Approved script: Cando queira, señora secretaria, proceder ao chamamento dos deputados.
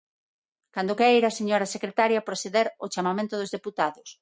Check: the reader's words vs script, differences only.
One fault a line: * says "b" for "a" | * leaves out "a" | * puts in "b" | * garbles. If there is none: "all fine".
all fine